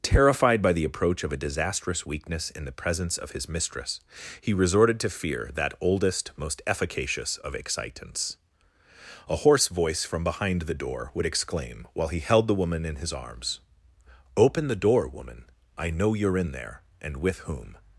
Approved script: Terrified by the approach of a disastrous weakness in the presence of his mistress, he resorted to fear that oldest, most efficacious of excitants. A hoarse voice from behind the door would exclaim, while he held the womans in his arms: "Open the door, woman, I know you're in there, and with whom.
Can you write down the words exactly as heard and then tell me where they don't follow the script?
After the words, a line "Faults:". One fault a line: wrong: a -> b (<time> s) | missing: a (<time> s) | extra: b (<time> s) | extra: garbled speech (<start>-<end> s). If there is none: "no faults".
Terrified by the approach of a disastrous weakness in the presence of his mistress, he resorted to fear that oldest, most efficacious of excitants. A hoarse voice from behind the door would exclaim, while he held the woman in his arms: "Open the door, woman, I know you're in there, and with whom.
Faults:
wrong: womans -> woman (12.6 s)